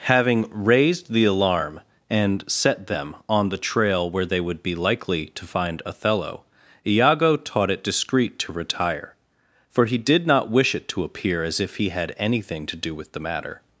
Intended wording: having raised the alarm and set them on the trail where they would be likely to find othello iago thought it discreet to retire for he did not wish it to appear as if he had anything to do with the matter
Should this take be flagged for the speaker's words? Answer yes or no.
yes